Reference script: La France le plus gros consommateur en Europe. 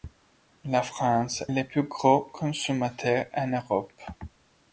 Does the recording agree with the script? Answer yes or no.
yes